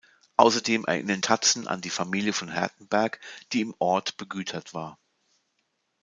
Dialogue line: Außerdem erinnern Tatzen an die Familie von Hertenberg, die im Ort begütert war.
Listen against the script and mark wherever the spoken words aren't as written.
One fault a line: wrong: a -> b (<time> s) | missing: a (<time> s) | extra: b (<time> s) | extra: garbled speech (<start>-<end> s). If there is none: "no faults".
no faults